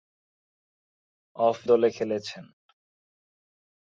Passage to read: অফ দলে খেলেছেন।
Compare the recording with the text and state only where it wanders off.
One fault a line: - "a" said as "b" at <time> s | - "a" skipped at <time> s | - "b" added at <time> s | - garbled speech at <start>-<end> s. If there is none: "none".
none